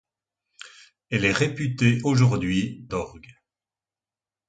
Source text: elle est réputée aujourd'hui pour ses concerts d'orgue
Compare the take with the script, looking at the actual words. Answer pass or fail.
fail